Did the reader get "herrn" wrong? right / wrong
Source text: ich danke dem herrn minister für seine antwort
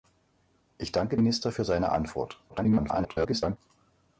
wrong